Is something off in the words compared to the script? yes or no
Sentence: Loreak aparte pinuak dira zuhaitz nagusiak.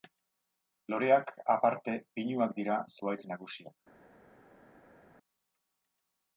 no